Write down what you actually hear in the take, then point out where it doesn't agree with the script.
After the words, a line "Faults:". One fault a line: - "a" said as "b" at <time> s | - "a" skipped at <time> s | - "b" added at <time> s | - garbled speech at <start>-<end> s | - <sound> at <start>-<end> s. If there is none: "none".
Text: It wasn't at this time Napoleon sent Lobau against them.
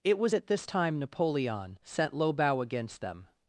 It was at this time Napoleon sent Lobau against them.
Faults:
- "wasn't" said as "was" at 0.2 s